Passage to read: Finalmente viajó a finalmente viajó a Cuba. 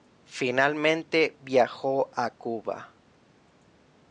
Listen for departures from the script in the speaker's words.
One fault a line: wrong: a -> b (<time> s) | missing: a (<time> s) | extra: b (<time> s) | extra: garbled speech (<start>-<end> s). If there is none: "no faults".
missing: finalmente viajó a (2.4 s)